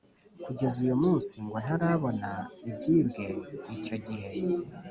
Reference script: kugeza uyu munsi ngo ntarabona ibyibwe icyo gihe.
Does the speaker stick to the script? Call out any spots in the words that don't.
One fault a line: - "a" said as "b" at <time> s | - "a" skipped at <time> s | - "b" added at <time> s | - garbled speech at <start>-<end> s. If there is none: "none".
none